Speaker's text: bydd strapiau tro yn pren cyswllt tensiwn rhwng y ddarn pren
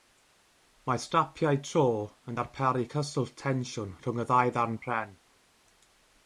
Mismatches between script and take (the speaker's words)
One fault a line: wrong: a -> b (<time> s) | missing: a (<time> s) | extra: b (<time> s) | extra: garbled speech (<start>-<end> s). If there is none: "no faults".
wrong: bydd -> mae (0.9 s)
wrong: pren -> darparu (2.4 s)
extra: ddau (4.3 s)